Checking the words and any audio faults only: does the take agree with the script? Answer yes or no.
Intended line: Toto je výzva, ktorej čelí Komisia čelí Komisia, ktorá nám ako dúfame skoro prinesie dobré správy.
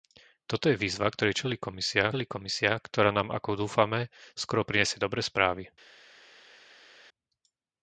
yes